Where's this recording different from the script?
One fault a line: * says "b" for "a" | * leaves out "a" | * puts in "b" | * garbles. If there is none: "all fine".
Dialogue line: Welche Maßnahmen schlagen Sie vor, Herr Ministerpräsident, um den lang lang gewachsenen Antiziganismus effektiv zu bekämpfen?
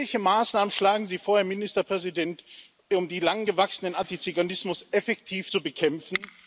* leaves out "lang"